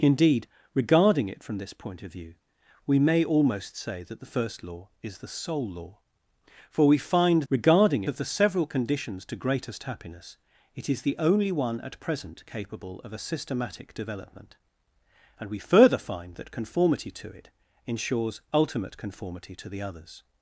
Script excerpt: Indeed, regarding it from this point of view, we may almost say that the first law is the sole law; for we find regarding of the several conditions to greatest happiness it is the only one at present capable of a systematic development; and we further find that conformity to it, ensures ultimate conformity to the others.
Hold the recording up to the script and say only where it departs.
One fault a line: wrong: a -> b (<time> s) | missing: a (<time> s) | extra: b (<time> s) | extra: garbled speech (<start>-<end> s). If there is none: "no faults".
no faults